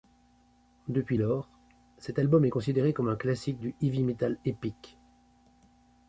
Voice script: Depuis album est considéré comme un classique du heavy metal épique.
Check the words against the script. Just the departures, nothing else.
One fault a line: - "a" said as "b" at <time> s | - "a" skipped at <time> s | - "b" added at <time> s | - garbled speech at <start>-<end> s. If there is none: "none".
- "lors cet" added at 1.2 s